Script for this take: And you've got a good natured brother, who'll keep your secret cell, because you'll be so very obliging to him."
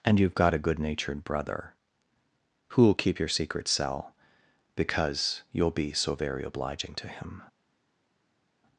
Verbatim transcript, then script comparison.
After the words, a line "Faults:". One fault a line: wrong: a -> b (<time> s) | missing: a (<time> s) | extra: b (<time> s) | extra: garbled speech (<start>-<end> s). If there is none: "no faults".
And you've got a good natured brother, who'll keep your secret cell, because you'll be so very obliging to him."
Faults:
no faults